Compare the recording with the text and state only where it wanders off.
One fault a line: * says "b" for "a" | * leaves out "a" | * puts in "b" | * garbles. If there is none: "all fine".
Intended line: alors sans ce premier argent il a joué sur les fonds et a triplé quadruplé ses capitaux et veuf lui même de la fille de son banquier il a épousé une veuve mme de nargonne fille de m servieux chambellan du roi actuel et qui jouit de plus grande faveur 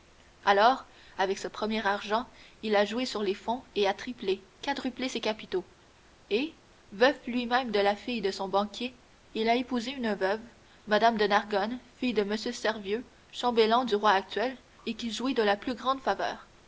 * says "avec" for "sans"
* puts in "la"